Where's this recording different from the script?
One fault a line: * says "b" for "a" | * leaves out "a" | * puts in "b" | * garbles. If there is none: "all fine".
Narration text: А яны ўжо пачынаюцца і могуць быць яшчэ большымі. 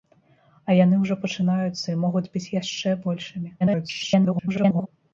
* garbles